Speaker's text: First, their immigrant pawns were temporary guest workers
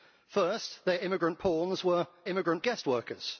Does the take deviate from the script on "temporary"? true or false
true